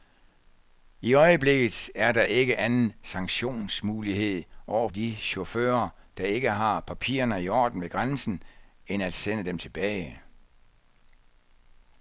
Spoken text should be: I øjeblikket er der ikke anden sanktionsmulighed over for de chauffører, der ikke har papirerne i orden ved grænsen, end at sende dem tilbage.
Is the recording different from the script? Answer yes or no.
yes